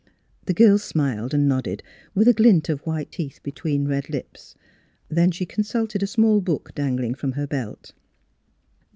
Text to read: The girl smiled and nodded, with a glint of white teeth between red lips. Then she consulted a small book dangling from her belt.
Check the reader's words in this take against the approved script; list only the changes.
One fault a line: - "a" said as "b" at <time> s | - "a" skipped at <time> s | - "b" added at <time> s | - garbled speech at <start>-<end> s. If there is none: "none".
none